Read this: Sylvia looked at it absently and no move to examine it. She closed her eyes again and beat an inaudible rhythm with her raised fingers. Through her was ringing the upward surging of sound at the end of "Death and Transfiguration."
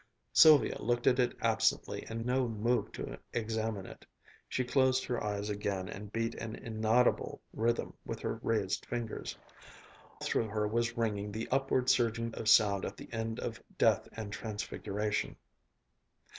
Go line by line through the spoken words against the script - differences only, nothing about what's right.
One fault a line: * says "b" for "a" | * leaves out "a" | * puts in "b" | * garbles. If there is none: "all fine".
all fine